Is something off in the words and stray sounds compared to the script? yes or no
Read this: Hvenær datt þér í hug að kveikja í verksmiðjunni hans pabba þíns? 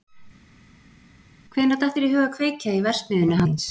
yes